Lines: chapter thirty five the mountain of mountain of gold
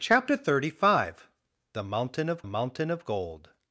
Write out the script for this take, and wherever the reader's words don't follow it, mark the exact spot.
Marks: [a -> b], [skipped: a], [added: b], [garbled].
chapter thirty five the mountain of mountain of gold